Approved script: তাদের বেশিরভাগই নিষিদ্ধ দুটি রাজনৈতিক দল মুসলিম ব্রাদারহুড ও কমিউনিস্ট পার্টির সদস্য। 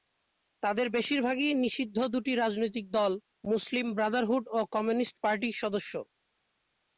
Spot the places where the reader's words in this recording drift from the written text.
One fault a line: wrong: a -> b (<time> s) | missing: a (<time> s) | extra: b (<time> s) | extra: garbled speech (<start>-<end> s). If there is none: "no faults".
no faults